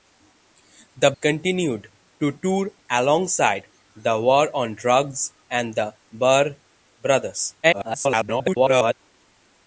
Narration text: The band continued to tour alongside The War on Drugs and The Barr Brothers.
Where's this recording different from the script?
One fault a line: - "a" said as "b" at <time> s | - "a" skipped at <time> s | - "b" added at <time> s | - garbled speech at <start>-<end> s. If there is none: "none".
- "band" skipped at 1.1 s
- garbled speech at 7.6-8.9 s